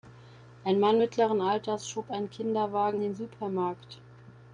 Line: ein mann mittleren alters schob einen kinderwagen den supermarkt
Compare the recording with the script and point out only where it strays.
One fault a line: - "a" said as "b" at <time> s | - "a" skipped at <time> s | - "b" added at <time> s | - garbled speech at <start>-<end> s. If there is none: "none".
none